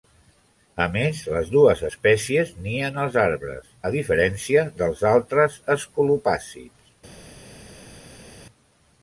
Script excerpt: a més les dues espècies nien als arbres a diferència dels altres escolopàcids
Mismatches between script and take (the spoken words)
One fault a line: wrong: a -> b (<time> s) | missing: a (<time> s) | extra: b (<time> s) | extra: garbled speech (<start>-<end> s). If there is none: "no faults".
no faults